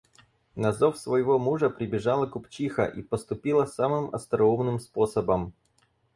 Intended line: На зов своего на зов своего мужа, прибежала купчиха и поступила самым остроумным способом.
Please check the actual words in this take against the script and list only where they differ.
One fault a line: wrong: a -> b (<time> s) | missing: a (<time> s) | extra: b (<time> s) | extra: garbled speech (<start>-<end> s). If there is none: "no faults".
missing: на зов своего (1.4 s)